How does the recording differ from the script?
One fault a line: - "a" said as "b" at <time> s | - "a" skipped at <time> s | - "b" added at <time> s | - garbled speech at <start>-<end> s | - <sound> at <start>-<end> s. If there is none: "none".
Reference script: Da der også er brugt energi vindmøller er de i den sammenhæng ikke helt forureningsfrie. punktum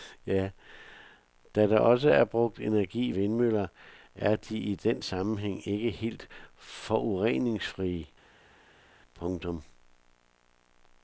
none